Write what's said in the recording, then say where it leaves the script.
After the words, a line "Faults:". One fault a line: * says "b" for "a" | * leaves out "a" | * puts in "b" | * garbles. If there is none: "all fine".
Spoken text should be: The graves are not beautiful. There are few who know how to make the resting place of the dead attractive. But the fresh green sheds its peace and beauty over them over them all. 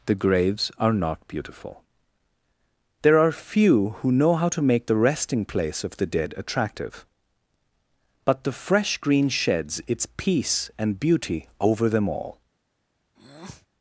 The graves are not beautiful. There are few who know how to make the resting place of the dead attractive. But the fresh green sheds its peace and beauty over them all.
Faults:
* leaves out "over them"